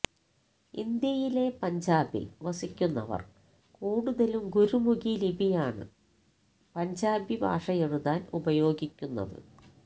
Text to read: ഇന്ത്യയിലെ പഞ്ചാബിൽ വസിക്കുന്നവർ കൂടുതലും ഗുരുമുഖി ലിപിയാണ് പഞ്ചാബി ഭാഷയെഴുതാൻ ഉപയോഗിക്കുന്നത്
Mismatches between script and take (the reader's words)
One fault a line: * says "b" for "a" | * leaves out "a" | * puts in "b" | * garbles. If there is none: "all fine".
all fine